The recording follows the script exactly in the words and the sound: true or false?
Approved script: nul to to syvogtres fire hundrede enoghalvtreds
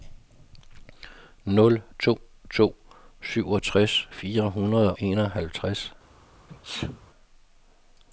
false